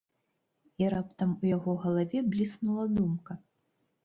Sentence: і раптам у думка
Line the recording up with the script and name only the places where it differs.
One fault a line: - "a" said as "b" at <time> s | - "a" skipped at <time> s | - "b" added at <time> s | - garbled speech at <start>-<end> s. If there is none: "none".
- "яго галаве бліснула" added at 1.5 s